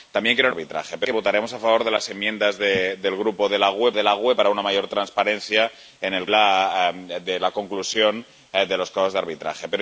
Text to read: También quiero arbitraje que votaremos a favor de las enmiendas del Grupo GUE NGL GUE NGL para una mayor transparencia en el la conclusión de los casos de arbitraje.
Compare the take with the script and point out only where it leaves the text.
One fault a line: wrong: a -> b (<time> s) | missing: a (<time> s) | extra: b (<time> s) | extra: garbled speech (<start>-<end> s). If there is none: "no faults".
no faults